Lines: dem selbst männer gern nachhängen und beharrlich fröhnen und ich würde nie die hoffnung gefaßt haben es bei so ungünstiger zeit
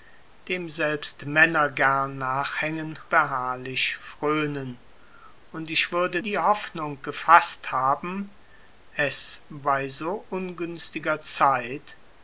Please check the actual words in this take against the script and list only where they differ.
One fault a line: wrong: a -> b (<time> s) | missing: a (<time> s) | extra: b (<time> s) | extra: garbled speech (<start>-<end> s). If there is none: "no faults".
missing: und (3.0 s)
missing: nie (6.2 s)